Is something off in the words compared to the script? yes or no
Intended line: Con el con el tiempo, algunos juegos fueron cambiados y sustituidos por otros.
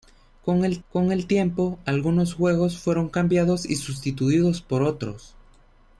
no